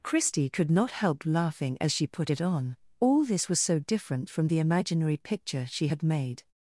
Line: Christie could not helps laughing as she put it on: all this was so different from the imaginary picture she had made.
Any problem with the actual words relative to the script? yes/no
yes